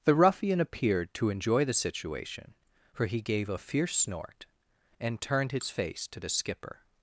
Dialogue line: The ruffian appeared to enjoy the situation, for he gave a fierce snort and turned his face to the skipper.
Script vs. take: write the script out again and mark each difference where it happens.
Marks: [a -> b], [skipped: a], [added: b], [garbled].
The ruffian appeared to enjoy the situation, for he gave a fierce snort and turned his face to the skipper.